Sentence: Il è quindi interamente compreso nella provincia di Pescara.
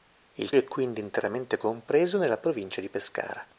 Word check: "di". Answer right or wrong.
right